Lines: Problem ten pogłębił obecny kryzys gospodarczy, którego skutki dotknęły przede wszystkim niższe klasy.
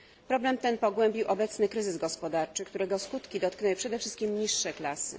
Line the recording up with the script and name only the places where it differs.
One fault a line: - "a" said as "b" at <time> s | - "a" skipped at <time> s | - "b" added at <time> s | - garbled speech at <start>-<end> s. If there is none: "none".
none